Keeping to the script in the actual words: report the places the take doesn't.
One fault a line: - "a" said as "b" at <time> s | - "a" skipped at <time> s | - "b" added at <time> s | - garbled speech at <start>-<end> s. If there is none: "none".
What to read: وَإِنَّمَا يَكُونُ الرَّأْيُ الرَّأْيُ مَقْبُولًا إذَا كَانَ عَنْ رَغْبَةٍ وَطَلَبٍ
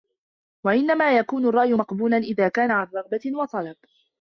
- "الرَّأْيُ" skipped at 1.7 s